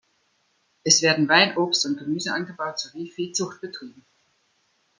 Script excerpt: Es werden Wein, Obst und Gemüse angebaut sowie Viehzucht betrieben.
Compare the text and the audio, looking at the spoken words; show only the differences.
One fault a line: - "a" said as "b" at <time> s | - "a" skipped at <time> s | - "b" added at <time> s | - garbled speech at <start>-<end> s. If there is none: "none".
none